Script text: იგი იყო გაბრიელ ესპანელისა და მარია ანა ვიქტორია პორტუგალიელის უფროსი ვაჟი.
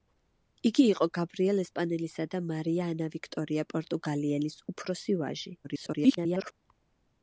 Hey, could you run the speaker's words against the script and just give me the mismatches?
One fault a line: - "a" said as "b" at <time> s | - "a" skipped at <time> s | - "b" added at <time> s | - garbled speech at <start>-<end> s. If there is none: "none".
- garbled speech at 5.6-6.5 s